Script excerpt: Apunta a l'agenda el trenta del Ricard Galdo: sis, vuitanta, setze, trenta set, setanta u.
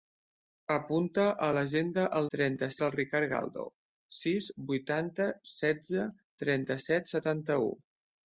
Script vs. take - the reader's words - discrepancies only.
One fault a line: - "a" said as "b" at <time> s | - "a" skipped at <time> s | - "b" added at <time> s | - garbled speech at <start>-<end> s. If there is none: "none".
none